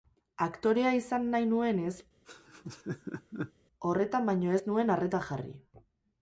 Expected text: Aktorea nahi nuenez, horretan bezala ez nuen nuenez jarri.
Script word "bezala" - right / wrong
wrong